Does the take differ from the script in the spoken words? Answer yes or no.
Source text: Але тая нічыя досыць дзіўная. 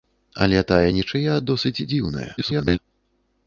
yes